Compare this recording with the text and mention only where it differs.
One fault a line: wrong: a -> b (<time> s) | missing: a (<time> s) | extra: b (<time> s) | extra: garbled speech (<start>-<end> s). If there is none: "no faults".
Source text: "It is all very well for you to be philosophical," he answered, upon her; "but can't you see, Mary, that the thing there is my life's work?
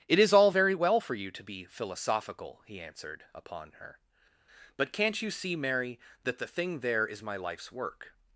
no faults